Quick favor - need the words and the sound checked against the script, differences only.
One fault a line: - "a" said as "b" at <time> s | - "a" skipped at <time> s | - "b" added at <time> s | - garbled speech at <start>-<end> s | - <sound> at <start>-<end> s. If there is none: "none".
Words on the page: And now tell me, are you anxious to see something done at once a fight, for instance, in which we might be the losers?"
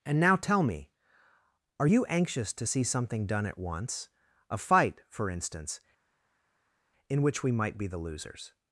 none